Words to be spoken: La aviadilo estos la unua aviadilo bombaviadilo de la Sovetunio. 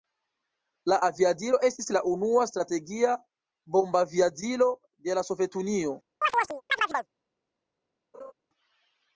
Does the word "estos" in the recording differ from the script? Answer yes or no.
yes